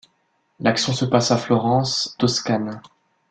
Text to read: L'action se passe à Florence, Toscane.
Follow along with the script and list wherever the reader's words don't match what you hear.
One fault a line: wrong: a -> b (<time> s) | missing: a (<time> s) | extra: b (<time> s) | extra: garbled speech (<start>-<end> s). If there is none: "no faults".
no faults